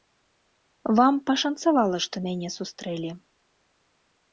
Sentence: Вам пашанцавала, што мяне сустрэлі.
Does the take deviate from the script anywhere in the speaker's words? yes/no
no